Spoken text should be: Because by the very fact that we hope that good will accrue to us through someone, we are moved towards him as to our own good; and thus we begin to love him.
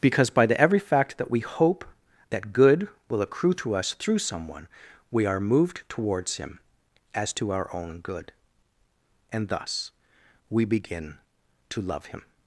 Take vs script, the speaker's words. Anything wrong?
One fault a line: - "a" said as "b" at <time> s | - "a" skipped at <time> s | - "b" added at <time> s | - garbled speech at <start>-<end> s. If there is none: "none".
- "very" said as "every" at 0.6 s